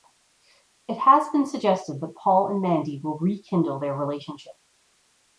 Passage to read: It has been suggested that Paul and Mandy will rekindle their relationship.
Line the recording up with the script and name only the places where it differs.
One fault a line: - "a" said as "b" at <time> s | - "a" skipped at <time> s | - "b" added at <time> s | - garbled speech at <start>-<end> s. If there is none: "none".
none